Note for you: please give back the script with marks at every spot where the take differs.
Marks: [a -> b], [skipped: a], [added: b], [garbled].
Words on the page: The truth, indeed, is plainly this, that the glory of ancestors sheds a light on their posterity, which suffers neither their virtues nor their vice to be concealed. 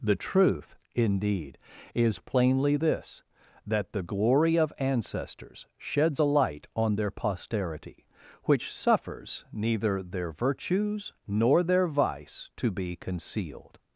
The truth, indeed, is plainly this, that the glory of ancestors sheds a light on their posterity, which suffers neither their virtues nor their vice to be concealed.